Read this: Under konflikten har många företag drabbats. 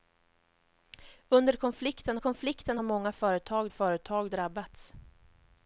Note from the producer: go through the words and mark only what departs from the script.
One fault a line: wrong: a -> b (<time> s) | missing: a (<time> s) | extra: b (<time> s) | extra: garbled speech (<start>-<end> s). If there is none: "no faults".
extra: konflikten (2.2 s)
extra: företag (3.7 s)